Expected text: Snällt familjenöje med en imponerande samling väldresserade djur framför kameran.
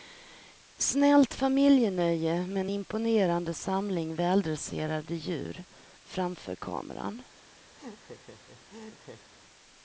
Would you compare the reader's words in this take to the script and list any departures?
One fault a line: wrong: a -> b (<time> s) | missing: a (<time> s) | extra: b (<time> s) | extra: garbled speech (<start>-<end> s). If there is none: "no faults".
no faults